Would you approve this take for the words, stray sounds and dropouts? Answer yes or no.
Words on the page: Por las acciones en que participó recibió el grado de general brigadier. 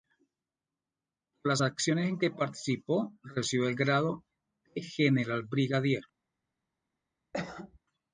no